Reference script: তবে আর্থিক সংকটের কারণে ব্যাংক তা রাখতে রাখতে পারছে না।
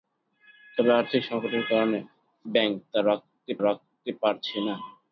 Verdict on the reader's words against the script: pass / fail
pass